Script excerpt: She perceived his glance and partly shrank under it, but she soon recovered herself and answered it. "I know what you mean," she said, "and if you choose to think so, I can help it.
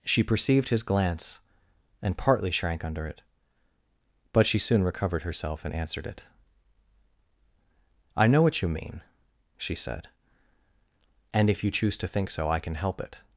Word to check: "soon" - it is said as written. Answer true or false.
true